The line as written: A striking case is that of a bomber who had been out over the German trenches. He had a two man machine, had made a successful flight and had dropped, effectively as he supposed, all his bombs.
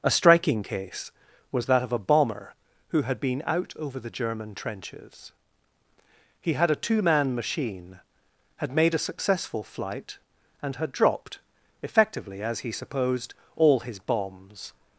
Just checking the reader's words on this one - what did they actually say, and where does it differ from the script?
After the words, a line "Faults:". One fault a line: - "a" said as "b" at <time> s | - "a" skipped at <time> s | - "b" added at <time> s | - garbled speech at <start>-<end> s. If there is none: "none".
A striking case was that of a bomber who had been out over the German trenches. He had a two man machine, had made a successful flight and had dropped, effectively as he supposed, all his bombs.
Faults:
- "is" said as "was" at 1.5 s